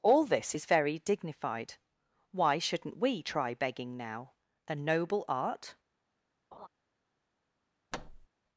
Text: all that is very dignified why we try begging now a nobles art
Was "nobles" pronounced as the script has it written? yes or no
no